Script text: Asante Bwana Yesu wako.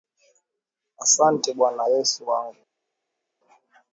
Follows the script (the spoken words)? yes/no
no